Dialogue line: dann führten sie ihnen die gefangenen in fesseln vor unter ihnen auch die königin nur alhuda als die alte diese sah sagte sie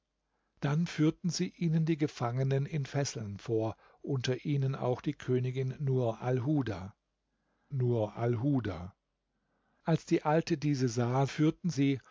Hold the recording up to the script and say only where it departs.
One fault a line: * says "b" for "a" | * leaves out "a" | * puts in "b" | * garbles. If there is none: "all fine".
* puts in "nur alhuda"
* says "führten" for "sagte"